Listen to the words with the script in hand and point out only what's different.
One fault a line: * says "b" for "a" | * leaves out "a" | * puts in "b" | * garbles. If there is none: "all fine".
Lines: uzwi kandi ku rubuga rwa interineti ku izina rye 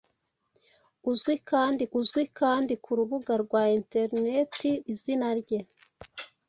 * puts in "uzwi kandi"
* leaves out "ku"